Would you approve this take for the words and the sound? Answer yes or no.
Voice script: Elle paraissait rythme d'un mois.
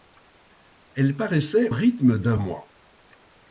yes